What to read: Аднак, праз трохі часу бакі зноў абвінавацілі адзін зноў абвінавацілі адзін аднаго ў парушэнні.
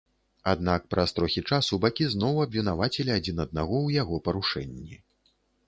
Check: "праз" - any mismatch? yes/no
no